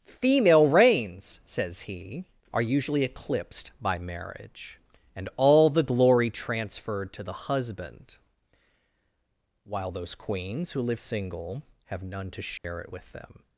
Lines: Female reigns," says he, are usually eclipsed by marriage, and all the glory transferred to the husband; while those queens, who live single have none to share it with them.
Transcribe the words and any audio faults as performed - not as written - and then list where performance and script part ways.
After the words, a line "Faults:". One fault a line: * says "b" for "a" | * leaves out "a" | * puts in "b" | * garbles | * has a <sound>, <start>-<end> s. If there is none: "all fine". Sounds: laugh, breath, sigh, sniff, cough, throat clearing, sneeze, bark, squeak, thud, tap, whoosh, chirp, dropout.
Female reigns," says he, are usually eclipsed by marriage, and all the glory transferred to the husband; while those queens, who live single have none to share it with them.
Faults:
* has a dropout, 12.6-12.6 s